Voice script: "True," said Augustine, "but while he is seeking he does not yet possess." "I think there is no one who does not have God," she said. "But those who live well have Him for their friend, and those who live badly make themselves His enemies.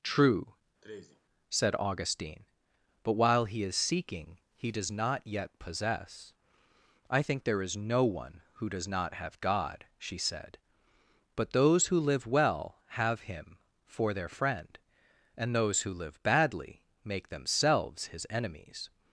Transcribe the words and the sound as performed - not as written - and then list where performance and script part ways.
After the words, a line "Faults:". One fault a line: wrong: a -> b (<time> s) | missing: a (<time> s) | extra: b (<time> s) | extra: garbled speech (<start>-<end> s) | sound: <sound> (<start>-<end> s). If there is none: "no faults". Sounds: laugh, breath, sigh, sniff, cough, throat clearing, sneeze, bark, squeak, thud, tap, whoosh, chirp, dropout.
"True," said Augustine, "but while he is seeking he does not yet possess." "I think there is no one who does not have God," she said. "But those who live well have Him for their friend, and those who live badly make themselves His enemies.
Faults:
sound: sneeze (0.8-1.2 s)